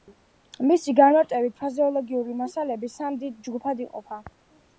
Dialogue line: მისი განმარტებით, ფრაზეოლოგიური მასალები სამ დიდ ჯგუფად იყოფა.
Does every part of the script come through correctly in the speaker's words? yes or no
yes